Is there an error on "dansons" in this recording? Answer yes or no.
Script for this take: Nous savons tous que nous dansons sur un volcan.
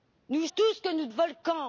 yes